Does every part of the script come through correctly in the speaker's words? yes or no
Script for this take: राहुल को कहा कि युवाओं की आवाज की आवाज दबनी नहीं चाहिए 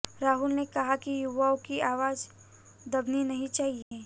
no